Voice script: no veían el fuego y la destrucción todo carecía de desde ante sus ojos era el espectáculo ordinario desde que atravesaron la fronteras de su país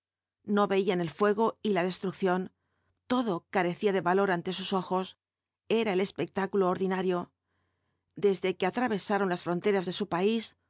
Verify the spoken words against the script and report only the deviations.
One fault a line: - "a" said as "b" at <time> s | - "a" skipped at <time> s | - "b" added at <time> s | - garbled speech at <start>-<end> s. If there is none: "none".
- "desde" said as "valor" at 4.0 s
- "la" said as "las" at 9.3 s